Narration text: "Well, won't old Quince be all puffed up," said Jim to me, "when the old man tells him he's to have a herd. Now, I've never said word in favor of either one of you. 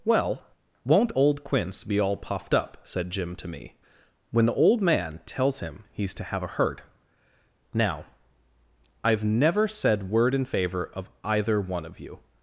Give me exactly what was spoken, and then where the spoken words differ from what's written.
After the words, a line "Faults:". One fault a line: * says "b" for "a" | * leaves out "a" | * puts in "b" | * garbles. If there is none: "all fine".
"Well, won't old Quince be all puffed up," said Jim to me, "when the old man tells him he's to have a herd. Now, I've never said word in favor of either one of you.
Faults:
all fine